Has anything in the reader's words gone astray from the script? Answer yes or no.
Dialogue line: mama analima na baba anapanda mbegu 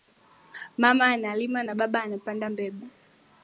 no